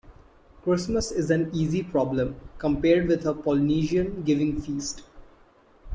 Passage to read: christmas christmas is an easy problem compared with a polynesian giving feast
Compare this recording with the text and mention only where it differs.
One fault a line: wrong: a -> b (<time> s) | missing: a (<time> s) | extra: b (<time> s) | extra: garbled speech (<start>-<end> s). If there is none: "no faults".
missing: christmas (1.1 s)